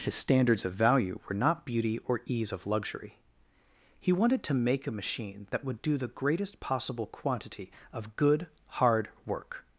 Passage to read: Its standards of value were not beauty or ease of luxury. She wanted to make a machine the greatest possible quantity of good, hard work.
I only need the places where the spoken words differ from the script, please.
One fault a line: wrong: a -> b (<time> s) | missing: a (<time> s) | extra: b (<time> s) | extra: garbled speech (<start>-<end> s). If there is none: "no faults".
wrong: Its -> His (0.0 s)
wrong: She -> He (4.0 s)
extra: that would do (5.5 s)